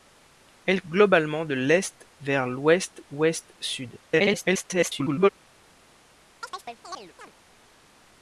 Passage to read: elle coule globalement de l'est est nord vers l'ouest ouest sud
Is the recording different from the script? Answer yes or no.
yes